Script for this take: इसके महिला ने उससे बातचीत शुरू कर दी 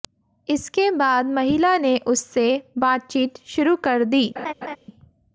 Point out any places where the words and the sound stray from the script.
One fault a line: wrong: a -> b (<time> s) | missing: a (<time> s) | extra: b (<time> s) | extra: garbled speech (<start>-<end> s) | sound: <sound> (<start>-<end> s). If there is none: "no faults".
extra: बाद (0.9 s)
sound: laugh (4.4-4.8 s)